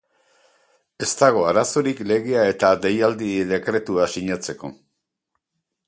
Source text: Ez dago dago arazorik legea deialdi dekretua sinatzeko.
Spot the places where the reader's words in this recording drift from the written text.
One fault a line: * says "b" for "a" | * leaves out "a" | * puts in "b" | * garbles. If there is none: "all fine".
* leaves out "dago"
* puts in "eta"